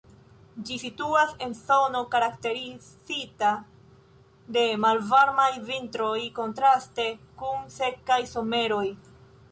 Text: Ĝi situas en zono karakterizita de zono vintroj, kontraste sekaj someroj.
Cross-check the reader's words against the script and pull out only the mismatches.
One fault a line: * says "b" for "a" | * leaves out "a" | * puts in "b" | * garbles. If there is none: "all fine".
* says "malvarmaj" for "zono"
* puts in "kun"